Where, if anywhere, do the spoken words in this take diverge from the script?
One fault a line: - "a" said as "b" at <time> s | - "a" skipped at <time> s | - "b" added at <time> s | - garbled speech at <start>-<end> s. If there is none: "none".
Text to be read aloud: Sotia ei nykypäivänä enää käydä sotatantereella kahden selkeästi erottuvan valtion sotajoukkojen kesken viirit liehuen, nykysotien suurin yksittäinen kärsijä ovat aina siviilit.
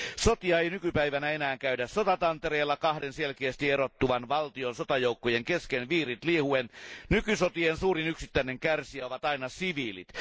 none